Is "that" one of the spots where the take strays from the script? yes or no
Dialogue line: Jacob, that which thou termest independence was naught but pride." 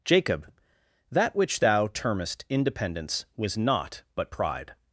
no